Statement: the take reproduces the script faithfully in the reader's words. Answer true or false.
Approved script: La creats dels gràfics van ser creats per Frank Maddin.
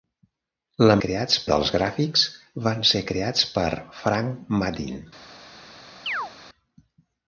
true